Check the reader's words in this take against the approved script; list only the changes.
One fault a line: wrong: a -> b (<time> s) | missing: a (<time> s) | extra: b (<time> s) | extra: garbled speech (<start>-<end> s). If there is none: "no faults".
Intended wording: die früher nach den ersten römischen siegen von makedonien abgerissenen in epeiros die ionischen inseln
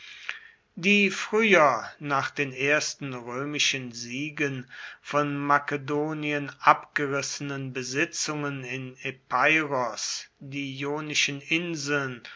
extra: besitzungen (7.7 s)